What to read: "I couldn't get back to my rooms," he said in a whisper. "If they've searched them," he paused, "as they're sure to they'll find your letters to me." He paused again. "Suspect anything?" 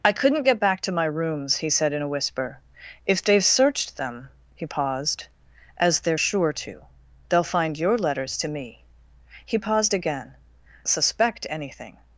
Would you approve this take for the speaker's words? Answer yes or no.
yes